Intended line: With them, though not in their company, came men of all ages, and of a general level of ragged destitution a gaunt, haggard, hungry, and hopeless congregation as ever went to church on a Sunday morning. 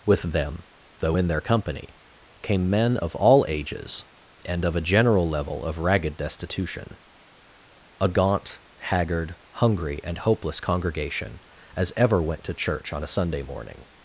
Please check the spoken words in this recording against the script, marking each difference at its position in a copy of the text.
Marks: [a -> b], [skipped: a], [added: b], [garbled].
With them, though [skipped: not] in their company, came men of all ages, and of a general level of ragged destitution a gaunt, haggard, hungry, and hopeless congregation as ever went to church on a Sunday morning.